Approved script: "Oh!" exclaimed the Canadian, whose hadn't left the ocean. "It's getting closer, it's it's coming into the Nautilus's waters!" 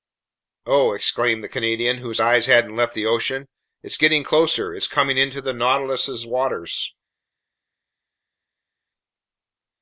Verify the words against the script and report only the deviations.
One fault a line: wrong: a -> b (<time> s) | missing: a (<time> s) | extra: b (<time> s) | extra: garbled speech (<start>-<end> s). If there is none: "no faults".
extra: eyes (2.2 s)
missing: it's (4.9 s)